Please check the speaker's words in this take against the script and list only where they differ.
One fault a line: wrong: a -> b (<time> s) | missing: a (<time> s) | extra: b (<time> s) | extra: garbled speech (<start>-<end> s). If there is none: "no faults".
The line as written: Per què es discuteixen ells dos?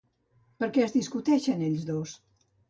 no faults